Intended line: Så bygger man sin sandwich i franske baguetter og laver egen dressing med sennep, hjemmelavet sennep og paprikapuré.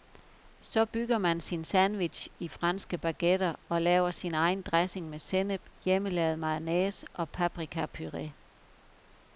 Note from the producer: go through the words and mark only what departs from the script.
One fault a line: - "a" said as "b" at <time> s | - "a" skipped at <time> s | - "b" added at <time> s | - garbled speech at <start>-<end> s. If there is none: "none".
- "sin" added at 4.1 s
- "sennep" said as "mayonnaise" at 6.4 s